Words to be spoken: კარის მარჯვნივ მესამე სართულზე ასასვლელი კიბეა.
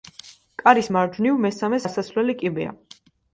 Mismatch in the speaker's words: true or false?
true